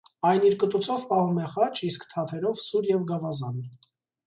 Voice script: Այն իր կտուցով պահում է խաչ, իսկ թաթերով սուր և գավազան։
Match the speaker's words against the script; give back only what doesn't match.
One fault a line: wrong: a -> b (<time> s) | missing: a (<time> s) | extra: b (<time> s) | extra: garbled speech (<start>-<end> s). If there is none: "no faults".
no faults